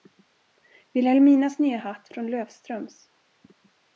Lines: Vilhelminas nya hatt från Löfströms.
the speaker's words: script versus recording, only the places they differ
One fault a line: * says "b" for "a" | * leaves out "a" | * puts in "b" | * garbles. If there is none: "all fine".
all fine